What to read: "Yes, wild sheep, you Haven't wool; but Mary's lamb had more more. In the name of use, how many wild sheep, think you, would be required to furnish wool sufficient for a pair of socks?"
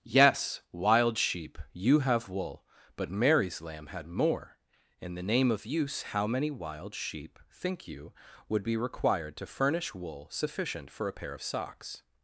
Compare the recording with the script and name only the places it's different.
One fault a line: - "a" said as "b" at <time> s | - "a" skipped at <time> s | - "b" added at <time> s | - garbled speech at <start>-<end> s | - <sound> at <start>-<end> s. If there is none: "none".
- "Haven't" said as "HAVE" at 2.0 s
- "more" skipped at 4.6 s